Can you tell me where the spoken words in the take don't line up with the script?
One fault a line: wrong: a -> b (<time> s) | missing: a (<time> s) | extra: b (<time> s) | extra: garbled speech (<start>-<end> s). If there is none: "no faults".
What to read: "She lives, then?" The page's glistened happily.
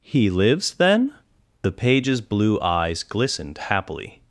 wrong: She -> He (0.0 s)
extra: blue eyes (2.2 s)